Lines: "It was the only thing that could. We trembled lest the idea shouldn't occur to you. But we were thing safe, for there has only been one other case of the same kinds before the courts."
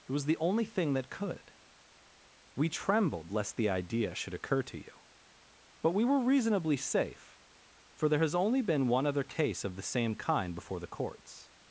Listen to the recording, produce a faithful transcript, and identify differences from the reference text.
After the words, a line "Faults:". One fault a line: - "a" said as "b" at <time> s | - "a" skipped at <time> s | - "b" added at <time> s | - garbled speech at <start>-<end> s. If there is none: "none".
"It was the only thing that could. We trembled lest the idea should occur to you. But we were reasonably safe, for there has only been one other case of the same kind before the courts."
Faults:
- "shouldn't" said as "should" at 4.2 s
- "thing" said as "reasonably" at 6.2 s
- "kinds" said as "kind" at 10.2 s